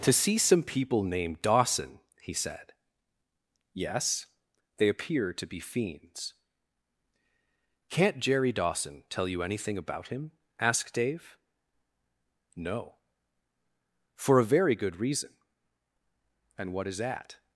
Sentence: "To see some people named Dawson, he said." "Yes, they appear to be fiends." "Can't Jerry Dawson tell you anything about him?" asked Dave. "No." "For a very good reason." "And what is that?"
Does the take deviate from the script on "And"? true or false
false